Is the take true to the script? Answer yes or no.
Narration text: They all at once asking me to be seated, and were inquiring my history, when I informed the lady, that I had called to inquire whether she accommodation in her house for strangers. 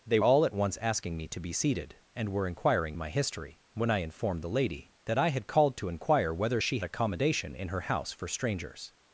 yes